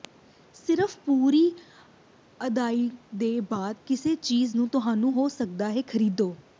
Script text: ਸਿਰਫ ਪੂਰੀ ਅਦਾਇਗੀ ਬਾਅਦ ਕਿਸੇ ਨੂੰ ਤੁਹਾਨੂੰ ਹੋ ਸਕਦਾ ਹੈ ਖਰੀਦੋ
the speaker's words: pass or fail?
fail